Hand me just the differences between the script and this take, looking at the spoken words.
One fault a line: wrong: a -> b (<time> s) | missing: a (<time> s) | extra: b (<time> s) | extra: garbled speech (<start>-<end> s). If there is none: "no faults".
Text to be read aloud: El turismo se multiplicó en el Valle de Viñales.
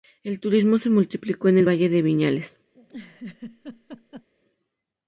no faults